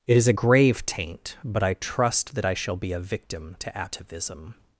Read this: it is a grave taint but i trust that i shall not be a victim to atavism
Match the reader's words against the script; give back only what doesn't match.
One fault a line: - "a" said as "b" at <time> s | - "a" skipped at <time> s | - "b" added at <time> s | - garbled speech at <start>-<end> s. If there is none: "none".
- "not" skipped at 2.8 s